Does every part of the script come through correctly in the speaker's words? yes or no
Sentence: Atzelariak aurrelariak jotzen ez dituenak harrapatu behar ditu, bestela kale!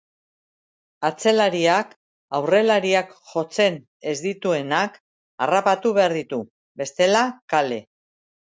yes